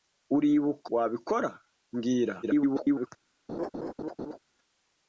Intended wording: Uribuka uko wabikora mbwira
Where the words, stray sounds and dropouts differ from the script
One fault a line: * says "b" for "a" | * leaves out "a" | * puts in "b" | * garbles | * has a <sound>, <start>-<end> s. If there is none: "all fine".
* leaves out "uko"
* garbles
* has a laugh, 3.5-4.4 s